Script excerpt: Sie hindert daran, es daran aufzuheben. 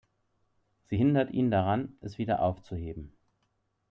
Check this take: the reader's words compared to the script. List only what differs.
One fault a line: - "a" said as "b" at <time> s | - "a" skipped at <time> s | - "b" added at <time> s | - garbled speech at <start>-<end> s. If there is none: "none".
- "ihn" added at 1.3 s
- "daran" said as "wieder" at 2.2 s